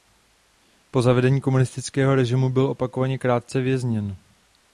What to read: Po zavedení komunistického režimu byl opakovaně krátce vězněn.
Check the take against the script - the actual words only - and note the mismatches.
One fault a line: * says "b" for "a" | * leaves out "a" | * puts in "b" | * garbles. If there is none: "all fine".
all fine